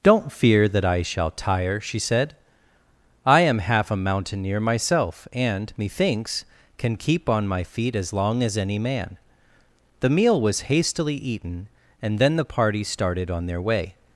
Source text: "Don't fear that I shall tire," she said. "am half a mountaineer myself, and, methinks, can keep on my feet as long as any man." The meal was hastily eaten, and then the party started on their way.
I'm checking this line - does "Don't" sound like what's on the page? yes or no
yes